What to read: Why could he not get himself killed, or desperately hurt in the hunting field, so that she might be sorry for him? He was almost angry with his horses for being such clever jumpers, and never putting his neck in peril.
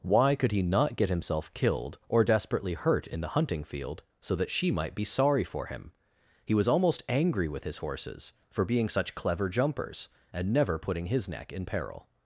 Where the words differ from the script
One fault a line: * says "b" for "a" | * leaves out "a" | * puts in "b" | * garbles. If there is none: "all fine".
all fine